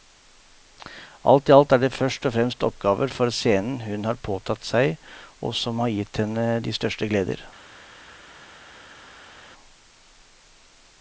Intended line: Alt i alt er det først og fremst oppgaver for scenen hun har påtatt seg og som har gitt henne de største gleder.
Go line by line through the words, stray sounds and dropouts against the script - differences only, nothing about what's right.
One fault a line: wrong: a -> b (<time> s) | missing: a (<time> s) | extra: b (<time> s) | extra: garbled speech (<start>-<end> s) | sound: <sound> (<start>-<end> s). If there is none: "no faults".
no faults